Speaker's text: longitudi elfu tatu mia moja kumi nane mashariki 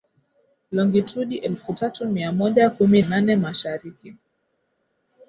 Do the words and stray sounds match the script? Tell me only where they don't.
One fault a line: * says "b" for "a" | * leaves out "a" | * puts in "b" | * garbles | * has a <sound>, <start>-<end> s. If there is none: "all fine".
all fine